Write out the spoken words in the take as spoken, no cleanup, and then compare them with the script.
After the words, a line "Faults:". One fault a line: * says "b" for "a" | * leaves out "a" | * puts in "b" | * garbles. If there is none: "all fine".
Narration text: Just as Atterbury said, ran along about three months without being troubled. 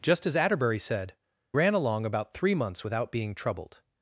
Just as Atterbury said, ran along about three months without being troubled.
Faults:
all fine